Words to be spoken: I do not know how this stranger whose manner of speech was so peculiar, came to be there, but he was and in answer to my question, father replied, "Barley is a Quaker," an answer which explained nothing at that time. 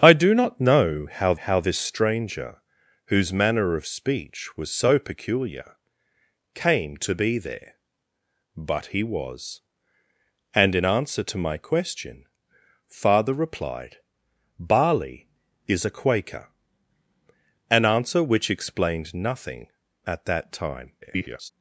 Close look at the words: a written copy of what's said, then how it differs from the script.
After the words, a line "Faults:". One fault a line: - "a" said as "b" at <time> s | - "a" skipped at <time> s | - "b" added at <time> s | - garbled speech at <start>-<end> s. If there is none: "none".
I do not know how how this stranger whose manner of speech was so peculiar, came to be there, but he was and in answer to my question, father replied, "Barley is a Quaker," an answer which explained nothing at that time. [garbled]
Faults:
- "how" added at 1.4 s
- garbled speech at 21.0-21.5 s